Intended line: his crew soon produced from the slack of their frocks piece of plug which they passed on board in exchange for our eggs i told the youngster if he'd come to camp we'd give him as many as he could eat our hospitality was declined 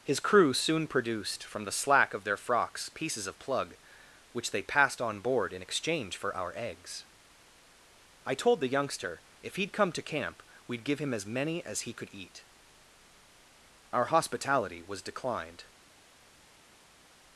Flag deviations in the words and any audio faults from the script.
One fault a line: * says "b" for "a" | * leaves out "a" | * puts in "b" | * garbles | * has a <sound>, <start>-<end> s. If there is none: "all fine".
* says "pieces" for "piece"